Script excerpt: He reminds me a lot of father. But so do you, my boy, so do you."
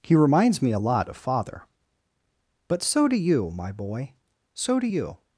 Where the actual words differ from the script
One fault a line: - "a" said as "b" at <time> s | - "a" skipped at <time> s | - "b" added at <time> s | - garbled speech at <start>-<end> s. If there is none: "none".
none